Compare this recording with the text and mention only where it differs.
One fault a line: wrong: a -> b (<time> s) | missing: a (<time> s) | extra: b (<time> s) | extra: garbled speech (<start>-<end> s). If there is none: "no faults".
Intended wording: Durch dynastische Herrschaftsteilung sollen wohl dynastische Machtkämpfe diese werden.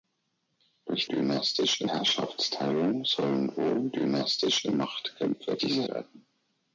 no faults